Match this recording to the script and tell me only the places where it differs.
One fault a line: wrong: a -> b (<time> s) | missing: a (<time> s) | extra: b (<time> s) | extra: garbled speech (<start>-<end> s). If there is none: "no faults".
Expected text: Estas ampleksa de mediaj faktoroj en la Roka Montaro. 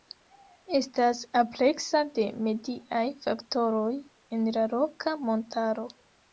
no faults